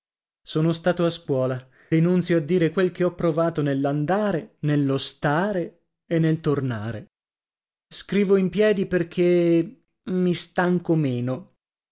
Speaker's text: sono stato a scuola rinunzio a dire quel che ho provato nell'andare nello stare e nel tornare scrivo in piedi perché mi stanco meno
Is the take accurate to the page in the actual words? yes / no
yes